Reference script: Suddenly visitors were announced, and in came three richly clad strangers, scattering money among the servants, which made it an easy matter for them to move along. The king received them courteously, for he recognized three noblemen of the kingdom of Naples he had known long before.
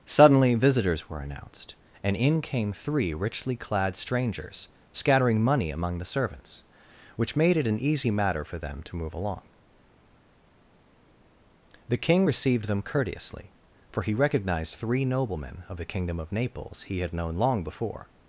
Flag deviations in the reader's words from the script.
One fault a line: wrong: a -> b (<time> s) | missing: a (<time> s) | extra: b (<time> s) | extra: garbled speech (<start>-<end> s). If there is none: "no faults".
no faults